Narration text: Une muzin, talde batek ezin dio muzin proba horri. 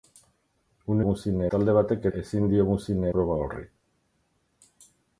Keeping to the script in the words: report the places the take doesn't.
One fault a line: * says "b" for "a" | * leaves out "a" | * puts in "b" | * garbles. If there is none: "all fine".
all fine